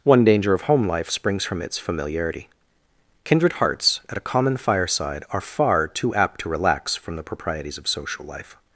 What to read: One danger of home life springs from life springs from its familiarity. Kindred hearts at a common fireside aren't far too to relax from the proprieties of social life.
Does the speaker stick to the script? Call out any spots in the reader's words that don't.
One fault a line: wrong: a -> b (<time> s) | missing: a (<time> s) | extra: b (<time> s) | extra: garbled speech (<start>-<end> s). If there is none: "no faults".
missing: life springs from (1.6 s)
wrong: aren't -> are (5.3 s)
extra: apt (6.2 s)